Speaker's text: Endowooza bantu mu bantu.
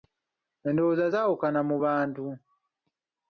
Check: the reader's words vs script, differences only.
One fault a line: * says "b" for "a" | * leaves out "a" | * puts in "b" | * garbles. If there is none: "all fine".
* says "zaawukana" for "bantu"